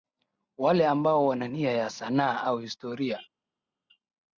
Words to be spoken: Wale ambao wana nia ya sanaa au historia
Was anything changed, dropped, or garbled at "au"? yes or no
no